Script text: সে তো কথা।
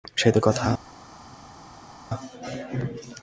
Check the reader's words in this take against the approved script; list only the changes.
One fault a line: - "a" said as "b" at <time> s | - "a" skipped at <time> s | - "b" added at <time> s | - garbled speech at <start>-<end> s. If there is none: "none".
none